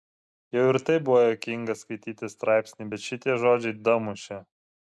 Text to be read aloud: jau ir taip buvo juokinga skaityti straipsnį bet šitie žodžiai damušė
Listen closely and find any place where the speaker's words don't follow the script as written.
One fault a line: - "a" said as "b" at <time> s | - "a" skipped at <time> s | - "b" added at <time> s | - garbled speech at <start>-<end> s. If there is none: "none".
none